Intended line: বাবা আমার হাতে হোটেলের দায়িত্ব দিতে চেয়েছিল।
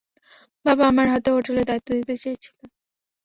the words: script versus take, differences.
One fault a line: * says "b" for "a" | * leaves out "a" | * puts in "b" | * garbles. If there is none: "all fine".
all fine